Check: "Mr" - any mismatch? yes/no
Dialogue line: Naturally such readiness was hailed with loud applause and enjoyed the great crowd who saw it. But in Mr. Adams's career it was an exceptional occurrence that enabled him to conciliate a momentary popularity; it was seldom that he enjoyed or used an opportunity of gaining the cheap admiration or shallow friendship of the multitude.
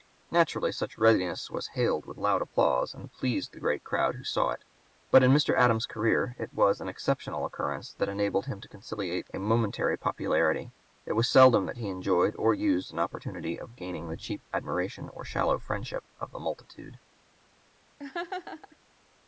no